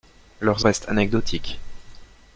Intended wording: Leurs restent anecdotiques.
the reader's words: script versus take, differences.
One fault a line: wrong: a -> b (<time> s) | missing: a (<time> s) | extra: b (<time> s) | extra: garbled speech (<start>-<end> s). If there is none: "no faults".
no faults